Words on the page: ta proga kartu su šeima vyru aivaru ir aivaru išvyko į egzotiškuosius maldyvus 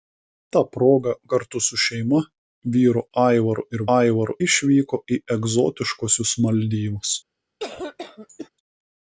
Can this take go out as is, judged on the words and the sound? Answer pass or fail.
fail